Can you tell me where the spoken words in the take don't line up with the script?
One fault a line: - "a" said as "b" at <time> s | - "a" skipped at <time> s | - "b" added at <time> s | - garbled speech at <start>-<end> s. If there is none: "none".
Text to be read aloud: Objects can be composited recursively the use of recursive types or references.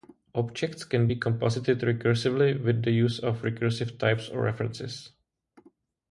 - "with" added at 2.6 s